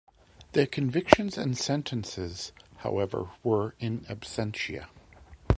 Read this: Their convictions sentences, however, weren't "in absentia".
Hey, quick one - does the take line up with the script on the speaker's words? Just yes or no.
no